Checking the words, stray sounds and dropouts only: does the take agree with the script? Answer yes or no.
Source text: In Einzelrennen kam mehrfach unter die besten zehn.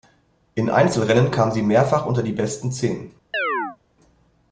no